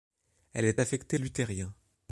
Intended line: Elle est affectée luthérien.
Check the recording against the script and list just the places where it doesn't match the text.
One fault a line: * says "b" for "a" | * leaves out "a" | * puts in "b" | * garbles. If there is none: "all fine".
all fine